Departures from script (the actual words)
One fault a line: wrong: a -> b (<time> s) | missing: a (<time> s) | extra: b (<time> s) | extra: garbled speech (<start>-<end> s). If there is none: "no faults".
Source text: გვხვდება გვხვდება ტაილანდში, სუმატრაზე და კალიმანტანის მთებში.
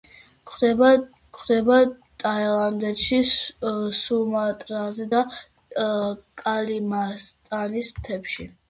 no faults